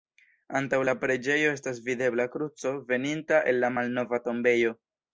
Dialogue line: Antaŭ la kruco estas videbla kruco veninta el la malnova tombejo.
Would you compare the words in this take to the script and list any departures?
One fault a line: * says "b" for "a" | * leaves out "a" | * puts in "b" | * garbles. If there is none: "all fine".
* says "preĝejo" for "kruco"